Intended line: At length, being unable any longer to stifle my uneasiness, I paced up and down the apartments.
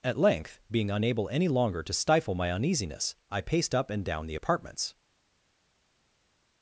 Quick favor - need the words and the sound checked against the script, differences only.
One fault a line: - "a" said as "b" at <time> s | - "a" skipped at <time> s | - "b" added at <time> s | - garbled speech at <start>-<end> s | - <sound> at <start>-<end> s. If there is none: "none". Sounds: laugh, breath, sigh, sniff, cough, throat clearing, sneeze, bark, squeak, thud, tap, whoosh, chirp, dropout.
none